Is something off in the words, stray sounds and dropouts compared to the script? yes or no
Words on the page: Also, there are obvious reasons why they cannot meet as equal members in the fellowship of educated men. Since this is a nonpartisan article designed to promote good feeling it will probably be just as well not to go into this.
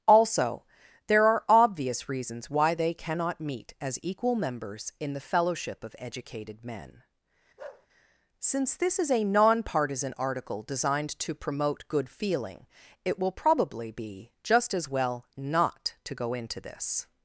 yes